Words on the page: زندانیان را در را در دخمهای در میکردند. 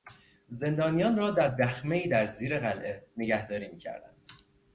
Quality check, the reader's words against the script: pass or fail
fail